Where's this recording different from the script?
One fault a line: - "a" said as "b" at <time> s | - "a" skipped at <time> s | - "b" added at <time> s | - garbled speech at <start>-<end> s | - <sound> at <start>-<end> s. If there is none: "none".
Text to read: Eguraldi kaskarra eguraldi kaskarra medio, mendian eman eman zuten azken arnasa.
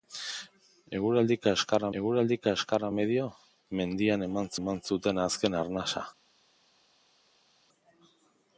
none